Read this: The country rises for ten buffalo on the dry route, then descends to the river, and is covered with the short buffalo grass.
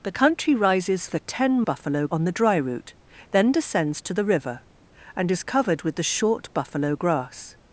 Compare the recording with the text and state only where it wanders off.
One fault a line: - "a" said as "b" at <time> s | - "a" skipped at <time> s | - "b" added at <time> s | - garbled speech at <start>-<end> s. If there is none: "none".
none